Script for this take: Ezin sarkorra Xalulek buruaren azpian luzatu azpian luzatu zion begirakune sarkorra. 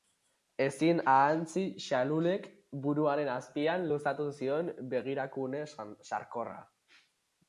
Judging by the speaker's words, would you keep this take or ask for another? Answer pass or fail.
fail